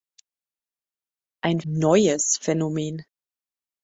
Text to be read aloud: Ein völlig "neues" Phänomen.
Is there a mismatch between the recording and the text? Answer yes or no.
yes